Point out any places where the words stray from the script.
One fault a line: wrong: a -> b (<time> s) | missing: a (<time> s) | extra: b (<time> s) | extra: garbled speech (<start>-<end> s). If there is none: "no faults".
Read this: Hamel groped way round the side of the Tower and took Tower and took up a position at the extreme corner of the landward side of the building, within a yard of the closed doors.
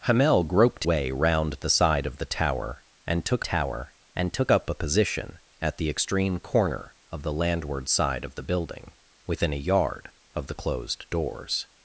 no faults